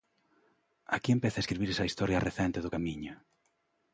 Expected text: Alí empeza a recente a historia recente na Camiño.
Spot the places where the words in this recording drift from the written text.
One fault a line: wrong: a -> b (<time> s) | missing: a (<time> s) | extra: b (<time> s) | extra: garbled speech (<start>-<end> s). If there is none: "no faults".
wrong: Alí -> Aquí (0.9 s)
wrong: recente -> escribirse (1.4 s)
wrong: na -> do (2.6 s)